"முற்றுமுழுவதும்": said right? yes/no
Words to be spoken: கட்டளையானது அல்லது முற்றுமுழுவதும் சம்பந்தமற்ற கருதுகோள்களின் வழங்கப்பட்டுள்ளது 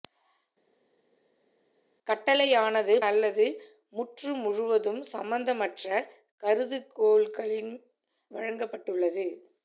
yes